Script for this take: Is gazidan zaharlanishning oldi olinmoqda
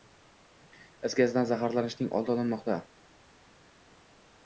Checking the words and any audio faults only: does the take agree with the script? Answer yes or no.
yes